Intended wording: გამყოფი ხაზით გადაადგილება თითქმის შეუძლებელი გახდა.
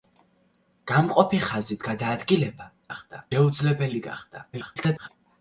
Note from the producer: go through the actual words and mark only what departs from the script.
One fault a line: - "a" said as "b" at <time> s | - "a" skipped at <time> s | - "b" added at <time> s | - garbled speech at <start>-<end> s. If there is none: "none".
- "თითქმის" said as "გახდა" at 2.9 s
- garbled speech at 4.5-5.1 s